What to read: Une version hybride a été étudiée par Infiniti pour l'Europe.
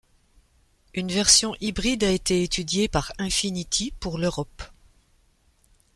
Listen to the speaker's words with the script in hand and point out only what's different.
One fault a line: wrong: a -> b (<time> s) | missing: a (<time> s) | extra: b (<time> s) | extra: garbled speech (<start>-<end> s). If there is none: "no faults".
no faults